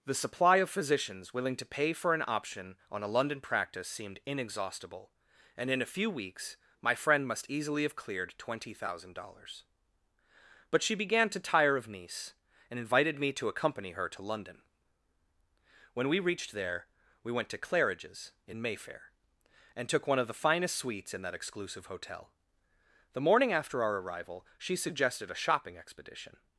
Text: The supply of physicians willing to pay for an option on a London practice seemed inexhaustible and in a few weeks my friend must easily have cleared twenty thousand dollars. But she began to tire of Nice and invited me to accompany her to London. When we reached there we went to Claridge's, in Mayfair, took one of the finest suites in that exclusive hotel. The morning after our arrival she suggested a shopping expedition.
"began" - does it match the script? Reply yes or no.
yes